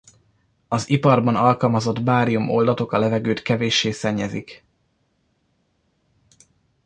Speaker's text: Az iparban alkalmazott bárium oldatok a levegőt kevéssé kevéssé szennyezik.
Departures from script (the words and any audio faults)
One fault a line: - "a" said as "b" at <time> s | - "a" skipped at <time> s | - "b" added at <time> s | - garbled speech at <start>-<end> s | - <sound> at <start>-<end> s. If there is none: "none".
- "kevéssé" skipped at 3.9 s